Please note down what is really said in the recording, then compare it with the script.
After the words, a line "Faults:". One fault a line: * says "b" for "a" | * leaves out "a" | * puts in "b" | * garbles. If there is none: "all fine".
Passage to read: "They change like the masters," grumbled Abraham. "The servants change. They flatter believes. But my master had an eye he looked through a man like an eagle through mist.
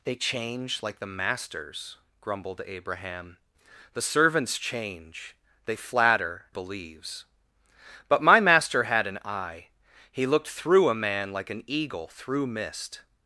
"They change like the masters," grumbled Abraham. "The servants change. They flatter believes. But my master had an eye he looked through a man like an eagle through mist.
Faults:
all fine